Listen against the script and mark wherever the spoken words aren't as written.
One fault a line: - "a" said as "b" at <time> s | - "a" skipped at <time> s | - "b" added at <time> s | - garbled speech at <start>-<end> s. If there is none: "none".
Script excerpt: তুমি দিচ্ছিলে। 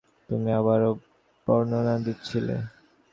- "আবারও বর্ণনা" added at 0.6 s